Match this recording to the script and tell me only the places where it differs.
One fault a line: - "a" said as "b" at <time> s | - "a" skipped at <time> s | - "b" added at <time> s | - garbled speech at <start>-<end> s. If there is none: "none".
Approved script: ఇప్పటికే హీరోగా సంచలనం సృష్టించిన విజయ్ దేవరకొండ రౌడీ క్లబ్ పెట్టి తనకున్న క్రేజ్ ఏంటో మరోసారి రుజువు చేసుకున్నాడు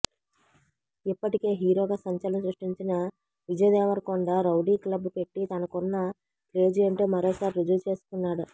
none